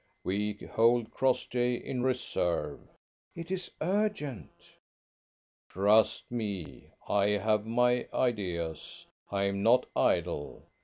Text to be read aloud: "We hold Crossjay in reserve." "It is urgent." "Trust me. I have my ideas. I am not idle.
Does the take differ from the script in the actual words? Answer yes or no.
no